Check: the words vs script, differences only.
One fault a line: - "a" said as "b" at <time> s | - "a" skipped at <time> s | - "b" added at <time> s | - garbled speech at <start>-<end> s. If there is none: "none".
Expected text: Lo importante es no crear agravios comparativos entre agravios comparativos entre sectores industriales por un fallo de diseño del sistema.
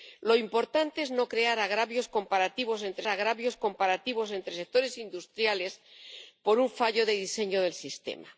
none